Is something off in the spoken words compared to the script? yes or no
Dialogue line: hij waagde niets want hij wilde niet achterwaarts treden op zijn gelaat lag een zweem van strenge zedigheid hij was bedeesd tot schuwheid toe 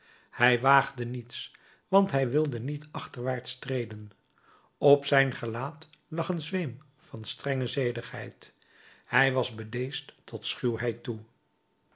no